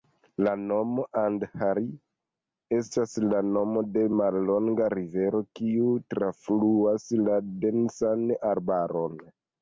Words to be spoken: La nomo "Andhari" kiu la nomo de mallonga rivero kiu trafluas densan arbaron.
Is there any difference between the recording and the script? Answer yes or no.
yes